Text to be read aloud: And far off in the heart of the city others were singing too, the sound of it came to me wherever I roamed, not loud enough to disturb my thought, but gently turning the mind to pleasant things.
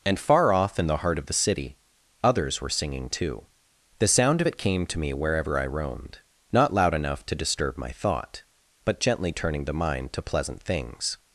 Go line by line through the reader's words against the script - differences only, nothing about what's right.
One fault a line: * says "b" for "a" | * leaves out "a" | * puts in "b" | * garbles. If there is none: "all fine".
all fine